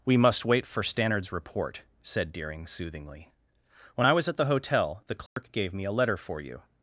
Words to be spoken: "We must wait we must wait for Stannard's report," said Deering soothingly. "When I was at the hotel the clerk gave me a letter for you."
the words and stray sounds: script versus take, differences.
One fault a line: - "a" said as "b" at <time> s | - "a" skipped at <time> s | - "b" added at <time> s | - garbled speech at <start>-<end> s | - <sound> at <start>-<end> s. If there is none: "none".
- "we must wait" skipped at 0.7 s
- dropout at 5.3-5.4 s